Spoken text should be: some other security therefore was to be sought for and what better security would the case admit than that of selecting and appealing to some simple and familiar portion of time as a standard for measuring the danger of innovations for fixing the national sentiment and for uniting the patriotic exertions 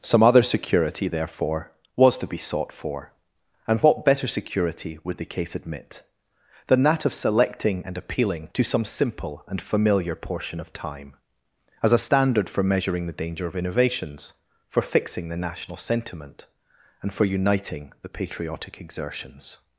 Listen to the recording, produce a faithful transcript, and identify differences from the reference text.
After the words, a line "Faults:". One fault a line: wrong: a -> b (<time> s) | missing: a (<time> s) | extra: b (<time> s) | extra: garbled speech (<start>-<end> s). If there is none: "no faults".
some other security therefore was to be sought for and what better security would the case admit than that of selecting and appealing to some simple and familiar portion of time as a standard for measuring the danger of innovations for fixing the national sentiment and for uniting the patriotic exertions
Faults:
no faults